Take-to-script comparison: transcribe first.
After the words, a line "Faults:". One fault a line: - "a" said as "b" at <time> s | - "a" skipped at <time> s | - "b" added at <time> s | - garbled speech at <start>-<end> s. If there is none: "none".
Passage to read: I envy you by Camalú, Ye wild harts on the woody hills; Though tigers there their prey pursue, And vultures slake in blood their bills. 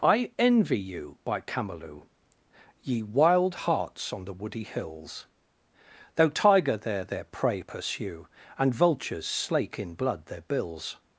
I envy you by Camalú, Ye wild harts on the woody hills; Though tiger there their prey pursue, And vultures slake in blood their bills.
Faults:
- "tigers" said as "tiger" at 6.3 s